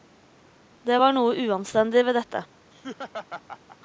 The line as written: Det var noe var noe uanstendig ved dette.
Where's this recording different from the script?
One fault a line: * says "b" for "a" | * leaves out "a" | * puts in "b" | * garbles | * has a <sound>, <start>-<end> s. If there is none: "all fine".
* leaves out "var noe"
* has a laugh, 2.7-3.8 s